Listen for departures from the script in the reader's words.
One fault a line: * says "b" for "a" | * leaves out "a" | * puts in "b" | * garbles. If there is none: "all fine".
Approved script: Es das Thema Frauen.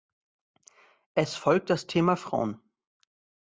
* puts in "folgt"